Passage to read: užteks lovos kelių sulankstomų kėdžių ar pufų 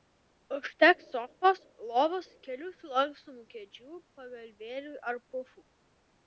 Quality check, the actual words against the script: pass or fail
fail